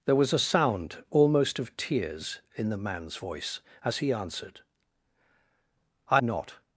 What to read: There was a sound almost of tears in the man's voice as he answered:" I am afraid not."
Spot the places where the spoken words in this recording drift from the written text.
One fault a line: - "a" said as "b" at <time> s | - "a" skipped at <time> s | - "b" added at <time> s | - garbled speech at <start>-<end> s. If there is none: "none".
- "am afraid" skipped at 6.2 s